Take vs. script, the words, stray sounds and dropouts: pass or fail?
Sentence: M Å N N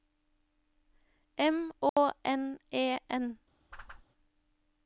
fail